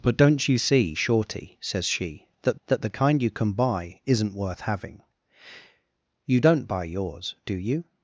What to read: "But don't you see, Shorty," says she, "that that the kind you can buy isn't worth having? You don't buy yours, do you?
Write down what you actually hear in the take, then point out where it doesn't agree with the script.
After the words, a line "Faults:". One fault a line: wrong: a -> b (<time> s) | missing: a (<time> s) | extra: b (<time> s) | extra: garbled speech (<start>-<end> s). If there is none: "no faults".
"But don't you see, Shorty," says she, "that that the kind you can buy isn't worth having? You don't buy yours, do you?
Faults:
no faults